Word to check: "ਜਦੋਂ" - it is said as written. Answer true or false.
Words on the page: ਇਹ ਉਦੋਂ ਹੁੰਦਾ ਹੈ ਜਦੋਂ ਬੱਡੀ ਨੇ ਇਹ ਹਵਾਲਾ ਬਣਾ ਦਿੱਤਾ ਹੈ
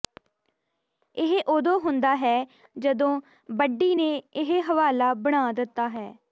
true